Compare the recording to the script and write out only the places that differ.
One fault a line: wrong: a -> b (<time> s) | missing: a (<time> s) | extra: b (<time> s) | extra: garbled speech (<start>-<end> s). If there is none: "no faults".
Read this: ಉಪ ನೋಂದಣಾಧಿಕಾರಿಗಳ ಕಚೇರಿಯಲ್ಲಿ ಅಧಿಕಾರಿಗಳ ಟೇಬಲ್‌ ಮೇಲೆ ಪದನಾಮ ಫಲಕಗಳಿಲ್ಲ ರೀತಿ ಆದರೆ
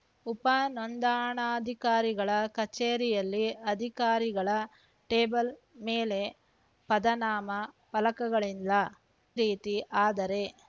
no faults